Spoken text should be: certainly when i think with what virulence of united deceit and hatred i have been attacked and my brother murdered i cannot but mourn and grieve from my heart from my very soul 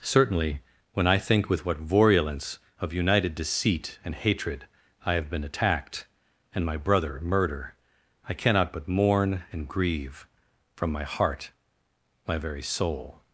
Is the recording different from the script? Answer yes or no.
yes